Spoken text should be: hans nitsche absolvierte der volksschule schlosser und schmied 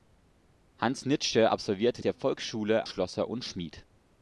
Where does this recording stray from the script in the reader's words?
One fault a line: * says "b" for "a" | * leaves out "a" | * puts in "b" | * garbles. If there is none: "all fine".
all fine